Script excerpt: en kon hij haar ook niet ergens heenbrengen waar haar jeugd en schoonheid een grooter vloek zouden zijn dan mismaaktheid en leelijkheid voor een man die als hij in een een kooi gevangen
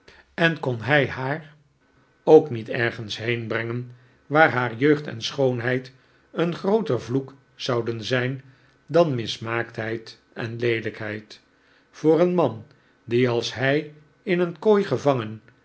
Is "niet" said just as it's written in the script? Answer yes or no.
yes